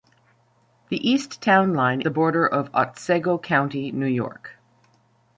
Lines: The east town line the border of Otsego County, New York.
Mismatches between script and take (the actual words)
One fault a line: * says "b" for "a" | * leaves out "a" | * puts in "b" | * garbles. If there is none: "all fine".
all fine